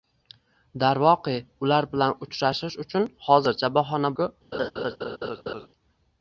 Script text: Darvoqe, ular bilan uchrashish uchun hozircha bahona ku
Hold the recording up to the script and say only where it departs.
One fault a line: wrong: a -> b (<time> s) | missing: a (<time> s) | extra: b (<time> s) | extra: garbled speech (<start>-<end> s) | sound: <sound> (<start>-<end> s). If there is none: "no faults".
sound: laugh (4.5-5.7 s)